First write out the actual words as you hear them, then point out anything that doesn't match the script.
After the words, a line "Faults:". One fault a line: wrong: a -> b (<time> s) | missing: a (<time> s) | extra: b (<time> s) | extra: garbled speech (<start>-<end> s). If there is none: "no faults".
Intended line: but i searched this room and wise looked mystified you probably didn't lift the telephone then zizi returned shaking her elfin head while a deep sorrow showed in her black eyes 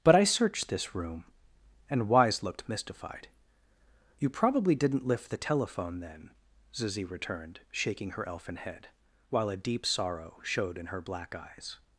but i searched this room and wise looked mystified you probably didn't lift the telephone then zizi returned shaking her elfin head while a deep sorrow showed in her black eyes
Faults:
no faults